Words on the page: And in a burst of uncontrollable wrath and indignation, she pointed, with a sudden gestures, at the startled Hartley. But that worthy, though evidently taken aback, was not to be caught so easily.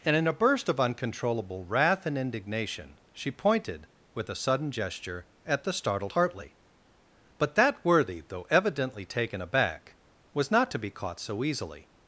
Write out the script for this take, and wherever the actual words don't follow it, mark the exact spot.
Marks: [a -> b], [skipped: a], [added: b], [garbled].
And in a burst of uncontrollable wrath and indignation, she pointed, with a sudden [gestures, -> gesture] at the startled Hartley. But that worthy, though evidently taken aback, was not to be caught so easily.